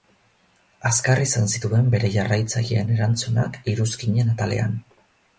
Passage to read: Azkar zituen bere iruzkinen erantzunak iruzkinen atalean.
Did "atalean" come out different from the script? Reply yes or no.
no